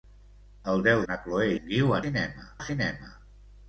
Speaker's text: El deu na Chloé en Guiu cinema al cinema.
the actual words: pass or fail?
pass